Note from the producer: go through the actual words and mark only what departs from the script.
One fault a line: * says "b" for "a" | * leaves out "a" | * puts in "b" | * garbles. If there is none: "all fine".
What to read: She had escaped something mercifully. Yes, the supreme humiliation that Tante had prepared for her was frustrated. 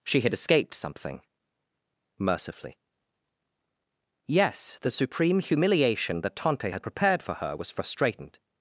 all fine